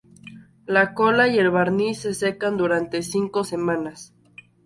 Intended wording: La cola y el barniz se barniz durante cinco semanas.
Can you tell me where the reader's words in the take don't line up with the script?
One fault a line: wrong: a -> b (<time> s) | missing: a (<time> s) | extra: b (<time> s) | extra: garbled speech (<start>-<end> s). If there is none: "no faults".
wrong: barniz -> secan (2.1 s)